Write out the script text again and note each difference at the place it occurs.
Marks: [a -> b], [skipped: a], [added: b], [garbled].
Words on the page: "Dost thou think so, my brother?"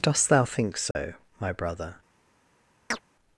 "Dost thou think so, my brother?"